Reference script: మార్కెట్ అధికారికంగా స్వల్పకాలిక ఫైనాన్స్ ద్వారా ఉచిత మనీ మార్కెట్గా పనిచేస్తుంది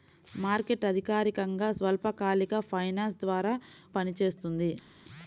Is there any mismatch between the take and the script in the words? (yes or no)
yes